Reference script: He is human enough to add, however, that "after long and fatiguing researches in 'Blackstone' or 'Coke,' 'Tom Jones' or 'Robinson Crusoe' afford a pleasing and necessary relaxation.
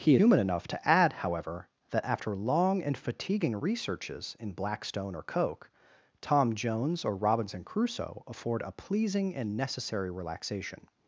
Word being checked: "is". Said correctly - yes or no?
no